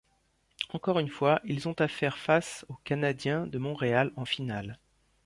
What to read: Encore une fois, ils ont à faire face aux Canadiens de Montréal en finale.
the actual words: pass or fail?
pass